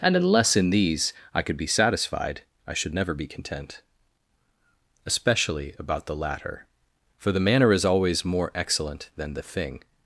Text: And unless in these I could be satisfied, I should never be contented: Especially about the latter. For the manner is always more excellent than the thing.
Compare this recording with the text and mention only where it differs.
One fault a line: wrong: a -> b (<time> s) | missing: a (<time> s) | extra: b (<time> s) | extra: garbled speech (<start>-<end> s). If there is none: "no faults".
wrong: contented -> content (3.3 s)